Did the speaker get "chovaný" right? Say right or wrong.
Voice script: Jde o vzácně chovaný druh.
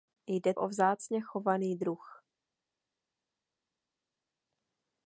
right